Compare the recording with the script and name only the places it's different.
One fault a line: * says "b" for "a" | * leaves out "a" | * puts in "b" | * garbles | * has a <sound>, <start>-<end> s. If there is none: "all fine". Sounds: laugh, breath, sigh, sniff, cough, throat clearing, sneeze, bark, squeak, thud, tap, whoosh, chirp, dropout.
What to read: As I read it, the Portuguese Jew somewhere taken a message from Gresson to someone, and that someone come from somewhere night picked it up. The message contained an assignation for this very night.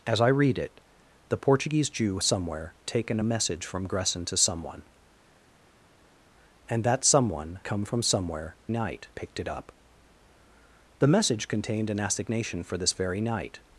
all fine